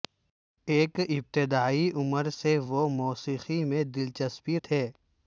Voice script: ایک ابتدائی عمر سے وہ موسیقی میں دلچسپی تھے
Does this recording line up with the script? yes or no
yes